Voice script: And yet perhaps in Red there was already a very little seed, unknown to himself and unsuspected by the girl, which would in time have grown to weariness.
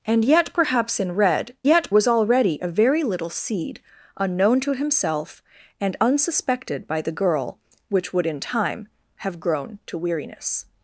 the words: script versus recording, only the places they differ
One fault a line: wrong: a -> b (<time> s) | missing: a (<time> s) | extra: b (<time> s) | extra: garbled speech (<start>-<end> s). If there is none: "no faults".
wrong: there -> yet (1.6 s)